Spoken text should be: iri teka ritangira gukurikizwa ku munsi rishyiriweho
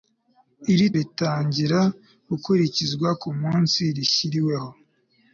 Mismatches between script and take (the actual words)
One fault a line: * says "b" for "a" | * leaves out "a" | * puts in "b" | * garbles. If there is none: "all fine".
* leaves out "teka"